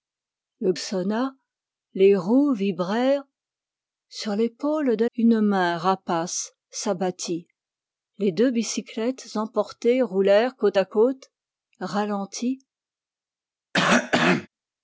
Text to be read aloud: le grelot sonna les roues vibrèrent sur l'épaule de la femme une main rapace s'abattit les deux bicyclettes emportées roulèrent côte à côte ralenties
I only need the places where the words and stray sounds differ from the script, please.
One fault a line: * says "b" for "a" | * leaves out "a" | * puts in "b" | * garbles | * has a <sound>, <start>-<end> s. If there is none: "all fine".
* leaves out "grelot"
* leaves out "la femme"
* has a cough, 13.7-14.5 s